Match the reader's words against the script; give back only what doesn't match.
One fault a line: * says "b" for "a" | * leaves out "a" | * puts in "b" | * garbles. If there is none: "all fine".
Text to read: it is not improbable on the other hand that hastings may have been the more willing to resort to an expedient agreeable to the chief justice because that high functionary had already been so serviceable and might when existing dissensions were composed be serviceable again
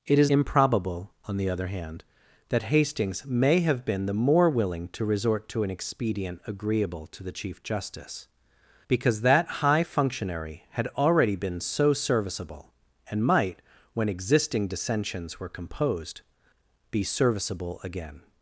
* leaves out "not"